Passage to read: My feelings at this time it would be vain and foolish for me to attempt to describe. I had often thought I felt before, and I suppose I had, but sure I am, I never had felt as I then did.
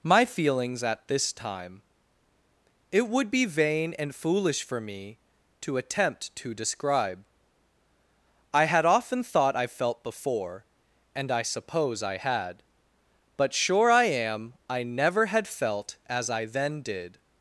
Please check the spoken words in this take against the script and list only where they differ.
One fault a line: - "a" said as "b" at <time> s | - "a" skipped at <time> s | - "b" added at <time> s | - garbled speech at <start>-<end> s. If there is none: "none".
none